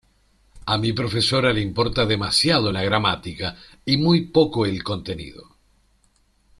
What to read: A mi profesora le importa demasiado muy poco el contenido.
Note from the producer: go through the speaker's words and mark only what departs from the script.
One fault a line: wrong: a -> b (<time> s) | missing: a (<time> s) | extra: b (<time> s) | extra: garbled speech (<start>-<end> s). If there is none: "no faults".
extra: la gramática y (2.7 s)